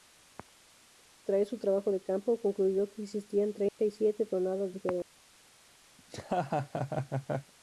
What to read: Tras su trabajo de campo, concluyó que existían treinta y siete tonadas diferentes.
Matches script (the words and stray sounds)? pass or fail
fail